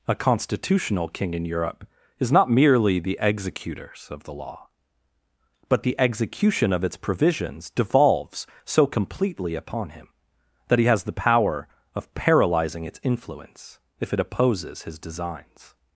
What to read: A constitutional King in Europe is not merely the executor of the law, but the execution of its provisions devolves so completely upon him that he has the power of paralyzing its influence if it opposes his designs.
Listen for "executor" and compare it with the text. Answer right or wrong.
wrong